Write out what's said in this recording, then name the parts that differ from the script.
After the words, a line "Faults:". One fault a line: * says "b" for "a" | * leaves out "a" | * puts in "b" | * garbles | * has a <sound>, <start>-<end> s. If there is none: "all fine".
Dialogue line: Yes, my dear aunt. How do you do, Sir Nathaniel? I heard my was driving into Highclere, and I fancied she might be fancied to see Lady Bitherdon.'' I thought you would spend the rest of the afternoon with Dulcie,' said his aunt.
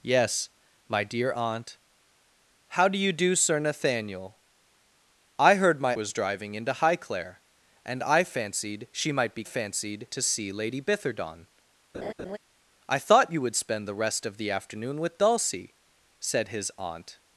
Yes, my dear aunt. How do you do, Sir Nathaniel? I heard my was driving into Highclere, and I fancied she might be fancied to see Lady Bitherdon.'' I thought you would spend the rest of the afternoon with Dulcie,' said his aunt.
Faults:
* has a laugh, 11.9-12.4 s